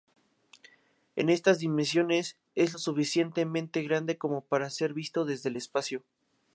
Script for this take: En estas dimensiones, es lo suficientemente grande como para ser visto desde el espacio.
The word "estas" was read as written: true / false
true